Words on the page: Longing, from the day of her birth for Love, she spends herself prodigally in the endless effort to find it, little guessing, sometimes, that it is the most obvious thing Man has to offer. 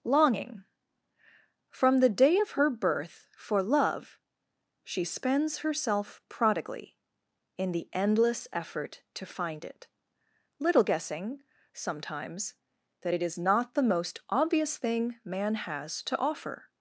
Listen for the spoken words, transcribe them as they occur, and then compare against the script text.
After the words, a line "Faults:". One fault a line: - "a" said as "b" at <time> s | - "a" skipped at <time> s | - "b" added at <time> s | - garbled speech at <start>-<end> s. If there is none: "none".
Longing, from the day of her birth for Love, she spends herself prodigally in the endless effort to find it, little guessing, sometimes, that it is not the most obvious thing Man has to offer.
Faults:
- "not" added at 13.4 s